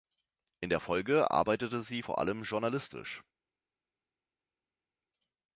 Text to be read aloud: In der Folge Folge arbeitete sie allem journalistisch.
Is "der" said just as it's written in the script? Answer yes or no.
yes